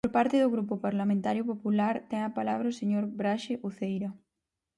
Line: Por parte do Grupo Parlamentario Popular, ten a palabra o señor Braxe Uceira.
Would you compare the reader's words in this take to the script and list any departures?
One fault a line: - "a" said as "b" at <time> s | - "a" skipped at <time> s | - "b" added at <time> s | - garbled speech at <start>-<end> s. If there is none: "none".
none